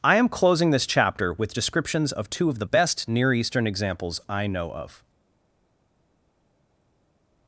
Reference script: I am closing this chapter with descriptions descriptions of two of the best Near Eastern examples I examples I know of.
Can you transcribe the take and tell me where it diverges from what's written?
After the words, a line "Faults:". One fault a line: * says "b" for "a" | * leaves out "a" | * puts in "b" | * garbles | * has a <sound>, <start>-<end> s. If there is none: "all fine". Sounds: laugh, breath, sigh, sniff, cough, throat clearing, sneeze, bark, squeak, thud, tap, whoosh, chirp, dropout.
I am closing this chapter with descriptions of two of the best Near Eastern examples I know of.
Faults:
* leaves out "descriptions"
* leaves out "examples I"